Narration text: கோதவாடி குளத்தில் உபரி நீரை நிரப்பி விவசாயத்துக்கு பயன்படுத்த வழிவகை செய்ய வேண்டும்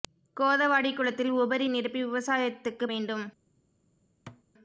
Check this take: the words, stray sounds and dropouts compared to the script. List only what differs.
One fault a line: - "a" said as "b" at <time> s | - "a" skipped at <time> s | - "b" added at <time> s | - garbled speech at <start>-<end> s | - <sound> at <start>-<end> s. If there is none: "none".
- "நீரை" skipped at 1.7 s
- "பயன்படுத்த வழிவகை செய்ய" skipped at 2.9 s
- thud at 4.3-4.4 s